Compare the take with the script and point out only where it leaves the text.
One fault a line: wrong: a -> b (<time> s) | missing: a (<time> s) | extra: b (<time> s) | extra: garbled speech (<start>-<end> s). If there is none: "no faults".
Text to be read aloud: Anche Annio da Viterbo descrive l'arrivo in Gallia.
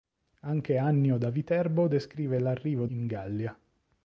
no faults